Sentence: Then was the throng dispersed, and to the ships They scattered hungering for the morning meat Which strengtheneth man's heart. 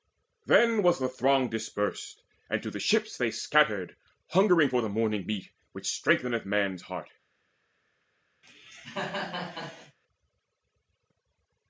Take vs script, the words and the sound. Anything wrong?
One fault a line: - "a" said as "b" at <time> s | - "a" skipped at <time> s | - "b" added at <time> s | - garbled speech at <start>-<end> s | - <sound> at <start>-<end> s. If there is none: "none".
- cough at 8.4-10.0 s